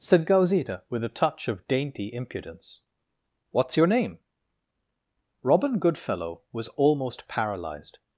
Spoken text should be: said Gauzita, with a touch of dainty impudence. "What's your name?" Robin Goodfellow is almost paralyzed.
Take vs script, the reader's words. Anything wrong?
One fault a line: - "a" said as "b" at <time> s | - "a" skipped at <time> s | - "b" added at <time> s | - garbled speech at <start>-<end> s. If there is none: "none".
- "is" said as "was" at 6.5 s